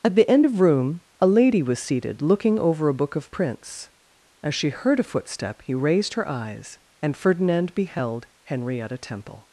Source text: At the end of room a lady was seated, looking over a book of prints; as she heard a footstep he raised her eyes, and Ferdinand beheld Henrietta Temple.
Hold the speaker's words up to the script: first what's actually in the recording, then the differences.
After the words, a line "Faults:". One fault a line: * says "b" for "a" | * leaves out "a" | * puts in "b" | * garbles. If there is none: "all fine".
At the end of room a lady was seated, looking over a book of prints; as she heard a footstep he raised her eyes, and Ferdinand beheld Henrietta Temple.
Faults:
all fine